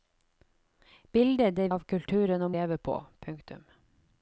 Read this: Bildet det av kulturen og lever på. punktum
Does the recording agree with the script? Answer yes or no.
yes